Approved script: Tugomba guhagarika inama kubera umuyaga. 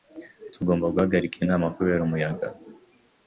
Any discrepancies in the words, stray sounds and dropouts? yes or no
no